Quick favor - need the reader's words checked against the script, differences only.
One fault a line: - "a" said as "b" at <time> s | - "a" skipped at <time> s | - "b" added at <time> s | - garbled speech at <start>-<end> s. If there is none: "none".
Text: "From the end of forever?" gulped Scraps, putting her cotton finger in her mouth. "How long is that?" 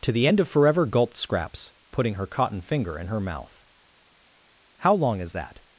- "From" said as "To" at 0.0 s